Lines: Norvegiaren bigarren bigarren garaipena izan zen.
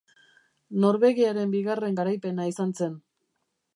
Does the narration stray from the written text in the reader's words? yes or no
yes